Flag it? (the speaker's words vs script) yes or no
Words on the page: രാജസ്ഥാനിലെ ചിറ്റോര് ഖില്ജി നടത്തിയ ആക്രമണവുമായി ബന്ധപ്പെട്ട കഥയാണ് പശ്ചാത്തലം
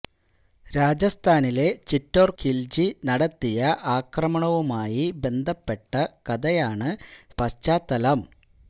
no